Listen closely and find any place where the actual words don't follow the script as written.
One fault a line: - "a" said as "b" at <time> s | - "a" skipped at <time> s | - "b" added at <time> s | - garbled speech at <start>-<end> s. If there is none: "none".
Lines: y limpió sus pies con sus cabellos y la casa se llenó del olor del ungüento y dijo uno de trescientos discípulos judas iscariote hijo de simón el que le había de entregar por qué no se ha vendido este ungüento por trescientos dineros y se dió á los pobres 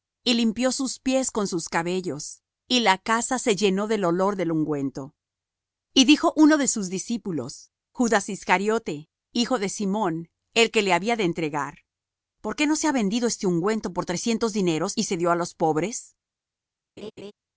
- "trescientos" said as "sus" at 6.7 s